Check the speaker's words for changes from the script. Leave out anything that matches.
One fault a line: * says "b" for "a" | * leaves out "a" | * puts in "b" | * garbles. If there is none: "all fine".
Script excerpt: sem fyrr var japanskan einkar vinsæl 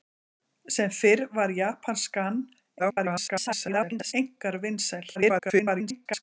* garbles
* garbles